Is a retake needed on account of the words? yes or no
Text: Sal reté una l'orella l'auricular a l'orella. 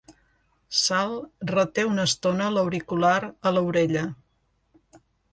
yes